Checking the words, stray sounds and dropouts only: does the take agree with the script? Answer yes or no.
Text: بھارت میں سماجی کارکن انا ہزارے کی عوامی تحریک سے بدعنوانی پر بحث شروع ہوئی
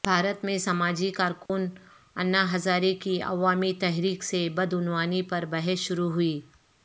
no